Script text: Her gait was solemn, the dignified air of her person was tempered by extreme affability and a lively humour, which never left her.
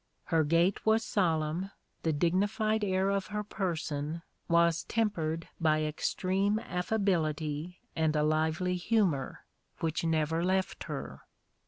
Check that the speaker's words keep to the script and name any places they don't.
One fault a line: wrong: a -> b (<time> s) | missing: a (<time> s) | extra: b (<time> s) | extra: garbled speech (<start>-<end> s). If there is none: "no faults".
no faults